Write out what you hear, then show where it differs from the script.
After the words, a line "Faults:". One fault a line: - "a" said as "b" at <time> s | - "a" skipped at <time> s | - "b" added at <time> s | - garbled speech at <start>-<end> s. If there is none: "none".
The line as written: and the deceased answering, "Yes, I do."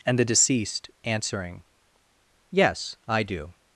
and the deceased answering, "Yes, I do."
Faults:
none